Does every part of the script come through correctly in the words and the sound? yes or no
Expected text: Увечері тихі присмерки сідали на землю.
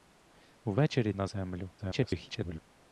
no